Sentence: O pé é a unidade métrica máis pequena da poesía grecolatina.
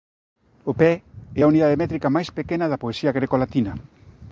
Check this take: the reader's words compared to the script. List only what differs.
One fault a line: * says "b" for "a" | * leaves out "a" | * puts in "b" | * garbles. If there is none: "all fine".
all fine